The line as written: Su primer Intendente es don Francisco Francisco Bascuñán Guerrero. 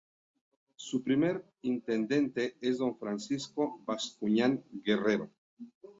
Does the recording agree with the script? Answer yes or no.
no